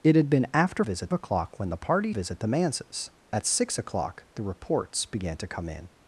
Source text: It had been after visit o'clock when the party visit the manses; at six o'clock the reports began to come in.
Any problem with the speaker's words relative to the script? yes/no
no